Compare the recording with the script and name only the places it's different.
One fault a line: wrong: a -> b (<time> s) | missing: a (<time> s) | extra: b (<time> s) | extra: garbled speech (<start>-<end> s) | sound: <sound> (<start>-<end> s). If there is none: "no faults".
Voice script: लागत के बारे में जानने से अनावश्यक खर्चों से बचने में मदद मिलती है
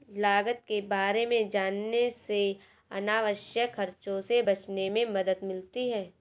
no faults